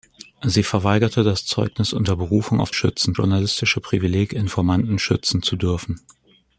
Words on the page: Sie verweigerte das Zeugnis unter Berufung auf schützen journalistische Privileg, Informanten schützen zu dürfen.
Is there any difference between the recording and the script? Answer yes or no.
no